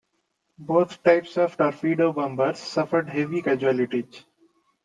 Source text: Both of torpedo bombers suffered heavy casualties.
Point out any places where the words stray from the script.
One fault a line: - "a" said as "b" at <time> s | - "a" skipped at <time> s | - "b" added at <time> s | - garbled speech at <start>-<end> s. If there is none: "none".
- "types" added at 1.0 s